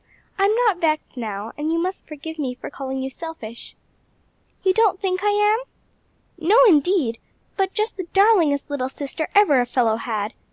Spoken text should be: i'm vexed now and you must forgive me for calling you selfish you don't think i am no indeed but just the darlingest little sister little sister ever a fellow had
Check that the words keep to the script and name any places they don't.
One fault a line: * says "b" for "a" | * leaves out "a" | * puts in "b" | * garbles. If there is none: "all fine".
* puts in "not"
* leaves out "little sister"